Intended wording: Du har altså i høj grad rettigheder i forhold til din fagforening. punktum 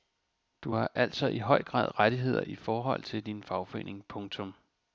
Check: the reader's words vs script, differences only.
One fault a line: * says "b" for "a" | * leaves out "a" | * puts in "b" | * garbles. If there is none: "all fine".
all fine